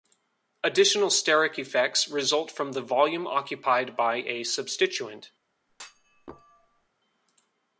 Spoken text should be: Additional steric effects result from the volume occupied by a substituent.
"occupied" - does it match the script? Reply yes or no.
yes